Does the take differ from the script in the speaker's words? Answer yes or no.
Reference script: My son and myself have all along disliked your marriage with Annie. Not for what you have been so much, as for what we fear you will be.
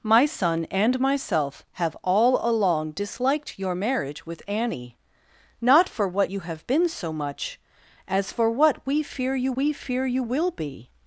yes